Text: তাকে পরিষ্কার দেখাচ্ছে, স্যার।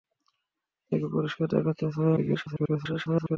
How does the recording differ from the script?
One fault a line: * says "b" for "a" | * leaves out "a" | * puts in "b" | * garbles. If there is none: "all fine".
* garbles